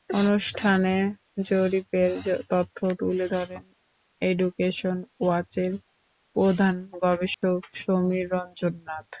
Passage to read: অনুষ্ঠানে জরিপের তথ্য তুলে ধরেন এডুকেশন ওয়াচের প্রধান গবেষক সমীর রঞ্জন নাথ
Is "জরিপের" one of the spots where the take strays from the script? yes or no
no